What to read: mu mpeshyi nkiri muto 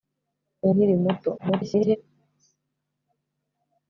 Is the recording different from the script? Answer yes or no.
yes